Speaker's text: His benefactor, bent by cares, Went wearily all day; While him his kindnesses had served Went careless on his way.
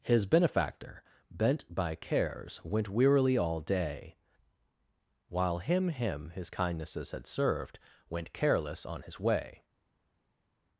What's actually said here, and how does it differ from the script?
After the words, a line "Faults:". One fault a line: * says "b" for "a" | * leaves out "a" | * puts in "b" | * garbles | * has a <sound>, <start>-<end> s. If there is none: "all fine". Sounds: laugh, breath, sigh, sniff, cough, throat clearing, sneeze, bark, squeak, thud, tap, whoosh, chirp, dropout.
His benefactor, bent by cares, Went wearily all day; While him him his kindnesses had served Went careless on his way.
Faults:
* puts in "him"